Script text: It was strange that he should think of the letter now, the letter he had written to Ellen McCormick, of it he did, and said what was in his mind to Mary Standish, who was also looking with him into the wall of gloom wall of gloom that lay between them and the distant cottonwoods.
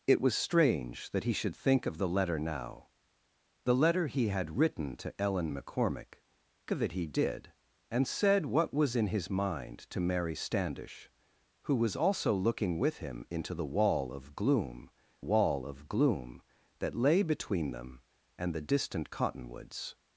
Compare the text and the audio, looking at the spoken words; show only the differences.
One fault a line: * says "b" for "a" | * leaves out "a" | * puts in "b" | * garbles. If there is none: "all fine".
all fine